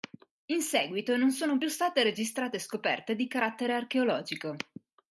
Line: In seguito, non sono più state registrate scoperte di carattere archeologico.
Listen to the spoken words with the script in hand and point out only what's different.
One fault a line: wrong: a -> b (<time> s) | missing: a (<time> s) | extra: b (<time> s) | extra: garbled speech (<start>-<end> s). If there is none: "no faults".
no faults